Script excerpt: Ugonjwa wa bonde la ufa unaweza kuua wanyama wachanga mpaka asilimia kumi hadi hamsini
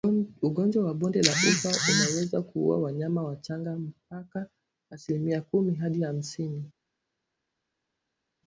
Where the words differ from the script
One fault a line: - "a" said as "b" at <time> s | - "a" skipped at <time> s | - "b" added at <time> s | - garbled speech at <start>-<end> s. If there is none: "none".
none